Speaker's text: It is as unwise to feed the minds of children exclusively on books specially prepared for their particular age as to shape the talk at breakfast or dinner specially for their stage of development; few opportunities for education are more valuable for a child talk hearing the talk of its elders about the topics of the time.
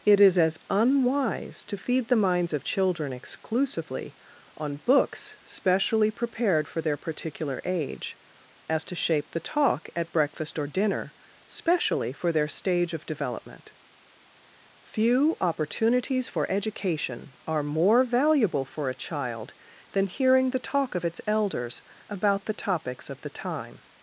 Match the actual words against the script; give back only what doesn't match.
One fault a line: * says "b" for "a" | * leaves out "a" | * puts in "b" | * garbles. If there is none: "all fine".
* says "than" for "talk"